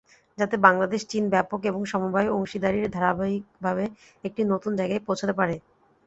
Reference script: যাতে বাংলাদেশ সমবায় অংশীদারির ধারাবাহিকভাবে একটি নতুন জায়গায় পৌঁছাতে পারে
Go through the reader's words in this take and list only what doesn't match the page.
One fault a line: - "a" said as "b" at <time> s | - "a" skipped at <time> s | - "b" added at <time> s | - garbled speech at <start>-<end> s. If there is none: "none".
- "চীন ব্যাপক এবং" added at 1.1 s